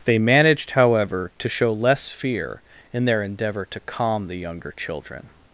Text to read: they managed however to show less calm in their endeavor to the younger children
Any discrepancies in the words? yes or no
yes